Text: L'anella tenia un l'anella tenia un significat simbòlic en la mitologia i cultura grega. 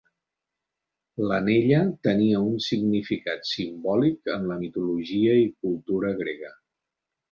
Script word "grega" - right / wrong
right